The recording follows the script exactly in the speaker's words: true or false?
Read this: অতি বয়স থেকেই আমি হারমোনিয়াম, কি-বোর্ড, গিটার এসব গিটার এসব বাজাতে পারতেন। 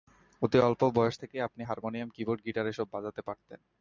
false